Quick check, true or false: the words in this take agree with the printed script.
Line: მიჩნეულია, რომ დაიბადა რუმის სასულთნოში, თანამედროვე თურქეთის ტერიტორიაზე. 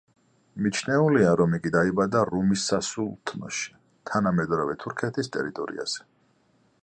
false